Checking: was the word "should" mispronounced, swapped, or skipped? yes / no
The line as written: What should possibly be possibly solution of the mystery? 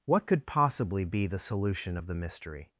yes